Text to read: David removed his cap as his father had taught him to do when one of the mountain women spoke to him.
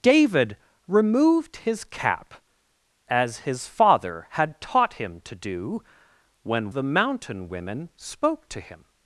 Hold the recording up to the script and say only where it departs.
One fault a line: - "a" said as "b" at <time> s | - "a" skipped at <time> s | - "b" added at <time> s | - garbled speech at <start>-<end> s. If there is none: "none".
- "one of" skipped at 6.7 s